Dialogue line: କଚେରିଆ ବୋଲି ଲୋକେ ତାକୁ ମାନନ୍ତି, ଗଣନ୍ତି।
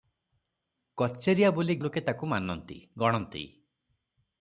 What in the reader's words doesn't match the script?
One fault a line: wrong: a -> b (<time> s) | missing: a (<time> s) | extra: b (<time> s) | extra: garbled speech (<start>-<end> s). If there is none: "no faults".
no faults